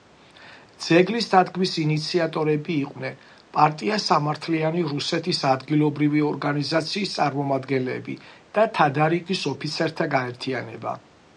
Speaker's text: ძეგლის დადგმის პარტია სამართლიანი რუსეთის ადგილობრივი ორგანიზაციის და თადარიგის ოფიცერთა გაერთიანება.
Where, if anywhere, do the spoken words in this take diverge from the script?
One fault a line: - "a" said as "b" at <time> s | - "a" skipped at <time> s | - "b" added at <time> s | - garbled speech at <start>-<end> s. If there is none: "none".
- "ინიციატორები იყვნენ" added at 1.8 s
- "წარმომადგენლები" added at 7.2 s